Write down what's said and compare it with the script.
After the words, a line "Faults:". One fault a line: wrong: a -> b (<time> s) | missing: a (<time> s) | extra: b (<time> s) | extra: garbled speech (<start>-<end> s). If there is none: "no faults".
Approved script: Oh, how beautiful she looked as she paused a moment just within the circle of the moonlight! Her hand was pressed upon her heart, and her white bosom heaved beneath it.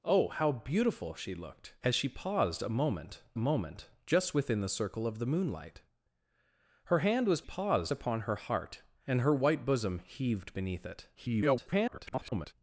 Oh, how beautiful she looked as she paused a moment moment just within the circle of the moonlight! Her hand was paused upon her heart, and her white bosom heaved beneath it. [garbled]
Faults:
extra: moment (3.4 s)
wrong: pressed -> paused (7.4 s)
extra: garbled speech (11.1-12.5 s)